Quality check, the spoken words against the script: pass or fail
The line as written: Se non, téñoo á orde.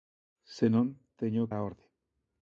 pass